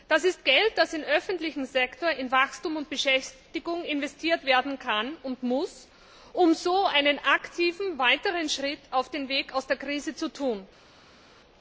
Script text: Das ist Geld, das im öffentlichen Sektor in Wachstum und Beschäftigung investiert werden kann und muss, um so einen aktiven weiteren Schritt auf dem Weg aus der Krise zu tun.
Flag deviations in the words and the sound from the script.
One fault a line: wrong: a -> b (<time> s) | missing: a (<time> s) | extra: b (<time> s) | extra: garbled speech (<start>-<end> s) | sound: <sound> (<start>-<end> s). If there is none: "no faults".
no faults